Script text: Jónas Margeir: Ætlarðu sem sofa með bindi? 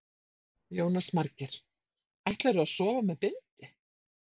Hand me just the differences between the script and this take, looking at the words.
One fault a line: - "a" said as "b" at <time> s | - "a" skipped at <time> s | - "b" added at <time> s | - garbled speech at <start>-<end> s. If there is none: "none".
- "sem" said as "að" at 2.7 s